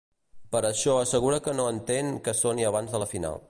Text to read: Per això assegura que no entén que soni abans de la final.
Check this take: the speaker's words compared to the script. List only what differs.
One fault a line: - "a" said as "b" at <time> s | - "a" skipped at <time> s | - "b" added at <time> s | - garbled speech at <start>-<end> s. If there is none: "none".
none